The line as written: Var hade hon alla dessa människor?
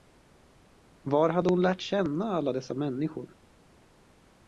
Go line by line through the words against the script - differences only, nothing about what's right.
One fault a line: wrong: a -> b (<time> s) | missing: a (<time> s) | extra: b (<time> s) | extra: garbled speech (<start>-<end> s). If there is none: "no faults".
extra: lärt känna (1.6 s)